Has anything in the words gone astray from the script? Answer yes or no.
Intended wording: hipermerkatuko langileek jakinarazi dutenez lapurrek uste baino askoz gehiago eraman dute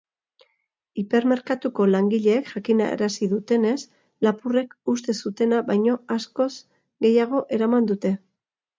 yes